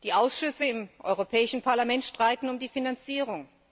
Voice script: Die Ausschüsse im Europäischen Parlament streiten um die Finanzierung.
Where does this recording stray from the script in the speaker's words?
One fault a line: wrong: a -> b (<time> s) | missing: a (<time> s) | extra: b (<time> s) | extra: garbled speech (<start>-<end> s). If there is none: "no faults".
no faults